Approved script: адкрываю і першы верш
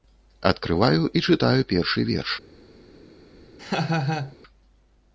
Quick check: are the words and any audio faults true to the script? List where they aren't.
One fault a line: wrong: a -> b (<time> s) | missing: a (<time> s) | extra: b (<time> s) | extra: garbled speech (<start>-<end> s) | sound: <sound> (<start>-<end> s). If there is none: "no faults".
extra: чытаю (1.3 s)
sound: laugh (3.6-4.4 s)